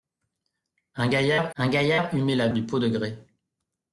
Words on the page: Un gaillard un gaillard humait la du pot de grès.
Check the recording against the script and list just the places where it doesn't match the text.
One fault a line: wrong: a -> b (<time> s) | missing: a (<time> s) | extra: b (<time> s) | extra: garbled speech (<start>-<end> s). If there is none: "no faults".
no faults